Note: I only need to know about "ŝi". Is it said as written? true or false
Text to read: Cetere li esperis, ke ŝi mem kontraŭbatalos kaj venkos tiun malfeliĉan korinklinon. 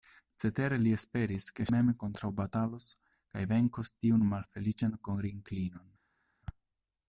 false